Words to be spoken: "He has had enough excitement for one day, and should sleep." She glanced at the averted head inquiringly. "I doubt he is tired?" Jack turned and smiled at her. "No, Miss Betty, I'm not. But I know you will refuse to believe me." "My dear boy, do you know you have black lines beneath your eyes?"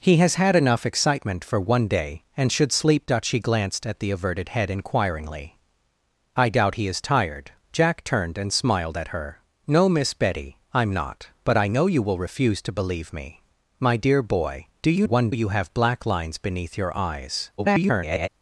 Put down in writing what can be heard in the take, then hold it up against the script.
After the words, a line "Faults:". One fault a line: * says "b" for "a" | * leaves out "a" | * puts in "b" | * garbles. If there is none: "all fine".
"He has had enough excitement for one day, and should sleep." She glanced at the averted head inquiringly. "I doubt he is tired?" Jack turned and smiled at her. "No, Miss Betty, I'm not. But I know you will refuse to believe me." "My dear boy, do you one you have black lines beneath your eyes?" [garbled]
Faults:
* says "one" for "know"
* garbles